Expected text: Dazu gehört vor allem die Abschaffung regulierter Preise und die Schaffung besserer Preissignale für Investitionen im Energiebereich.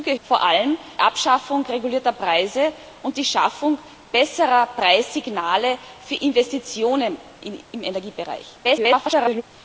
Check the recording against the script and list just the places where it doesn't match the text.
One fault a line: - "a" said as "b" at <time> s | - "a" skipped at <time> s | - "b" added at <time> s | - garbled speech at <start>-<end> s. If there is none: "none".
- "gehört" skipped at 0.2 s
- "die" skipped at 0.8 s
- garbled speech at 8.6-9.4 s